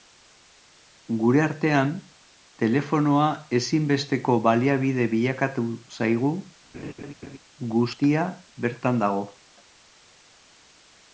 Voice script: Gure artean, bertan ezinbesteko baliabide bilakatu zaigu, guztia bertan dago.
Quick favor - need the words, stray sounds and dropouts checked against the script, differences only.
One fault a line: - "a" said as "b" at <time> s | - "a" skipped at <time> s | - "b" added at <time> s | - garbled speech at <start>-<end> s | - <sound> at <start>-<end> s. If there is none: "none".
- "bertan" said as "telefonoa" at 2.6 s
- laugh at 6.7-7.4 s